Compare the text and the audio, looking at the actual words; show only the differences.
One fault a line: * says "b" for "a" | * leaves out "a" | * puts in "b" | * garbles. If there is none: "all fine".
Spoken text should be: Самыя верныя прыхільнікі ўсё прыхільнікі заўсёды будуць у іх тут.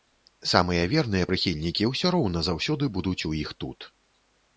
* says "роўна" for "прыхільнікі"